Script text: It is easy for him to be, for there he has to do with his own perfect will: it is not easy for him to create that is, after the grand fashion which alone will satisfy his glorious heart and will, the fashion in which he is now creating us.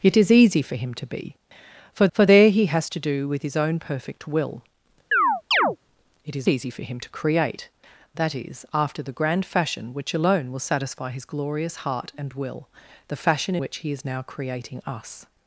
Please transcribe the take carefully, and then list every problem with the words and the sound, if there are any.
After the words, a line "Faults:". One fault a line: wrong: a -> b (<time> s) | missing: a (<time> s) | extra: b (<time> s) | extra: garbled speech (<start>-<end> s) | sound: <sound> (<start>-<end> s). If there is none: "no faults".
It is easy for him to be, for for there he has to do with his own perfect will: it is easy for him to create that is, after the grand fashion which alone will satisfy his glorious heart and will, the fashion which he is now creating us.
Faults:
extra: for (2.1 s)
sound: chirp (5.1-5.8 s)
missing: not (6.5 s)
missing: in (13.6 s)